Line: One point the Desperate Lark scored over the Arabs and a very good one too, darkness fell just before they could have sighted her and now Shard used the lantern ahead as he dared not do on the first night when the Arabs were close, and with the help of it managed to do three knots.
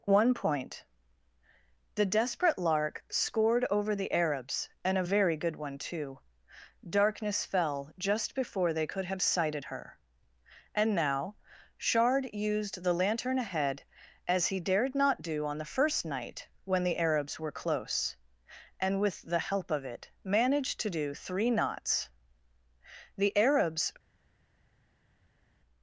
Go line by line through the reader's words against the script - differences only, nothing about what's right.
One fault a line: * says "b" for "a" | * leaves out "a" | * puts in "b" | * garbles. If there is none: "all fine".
* puts in "The Arabs"